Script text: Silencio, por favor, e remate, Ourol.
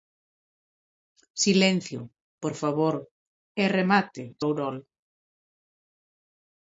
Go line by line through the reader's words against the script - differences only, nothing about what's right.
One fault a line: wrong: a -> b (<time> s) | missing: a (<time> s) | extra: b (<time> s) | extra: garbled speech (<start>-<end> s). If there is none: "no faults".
no faults